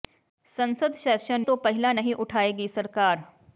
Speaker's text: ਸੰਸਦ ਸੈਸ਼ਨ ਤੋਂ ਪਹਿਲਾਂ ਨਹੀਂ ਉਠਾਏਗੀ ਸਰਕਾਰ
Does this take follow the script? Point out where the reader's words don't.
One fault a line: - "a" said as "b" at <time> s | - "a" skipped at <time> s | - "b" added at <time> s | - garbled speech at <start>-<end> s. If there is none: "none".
none